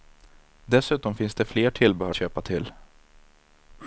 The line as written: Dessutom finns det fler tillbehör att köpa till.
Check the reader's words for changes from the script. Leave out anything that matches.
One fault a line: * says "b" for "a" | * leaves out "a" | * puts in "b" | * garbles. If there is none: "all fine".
* leaves out "att"